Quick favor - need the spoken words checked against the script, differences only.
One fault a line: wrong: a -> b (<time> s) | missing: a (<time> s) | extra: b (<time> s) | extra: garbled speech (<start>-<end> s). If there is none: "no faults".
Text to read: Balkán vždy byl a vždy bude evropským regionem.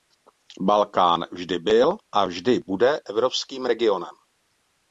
no faults